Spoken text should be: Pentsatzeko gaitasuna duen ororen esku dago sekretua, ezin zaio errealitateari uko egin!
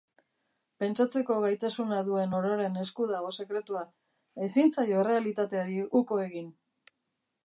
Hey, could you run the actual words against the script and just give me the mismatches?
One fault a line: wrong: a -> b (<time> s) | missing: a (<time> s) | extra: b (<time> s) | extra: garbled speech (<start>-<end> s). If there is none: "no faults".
no faults